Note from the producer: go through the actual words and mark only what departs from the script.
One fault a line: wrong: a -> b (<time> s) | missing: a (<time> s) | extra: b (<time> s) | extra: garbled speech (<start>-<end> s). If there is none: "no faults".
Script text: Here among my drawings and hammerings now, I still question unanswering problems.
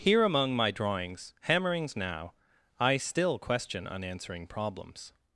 missing: and (1.4 s)